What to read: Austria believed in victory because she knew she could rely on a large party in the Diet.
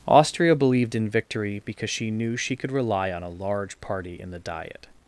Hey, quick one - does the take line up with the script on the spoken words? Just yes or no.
yes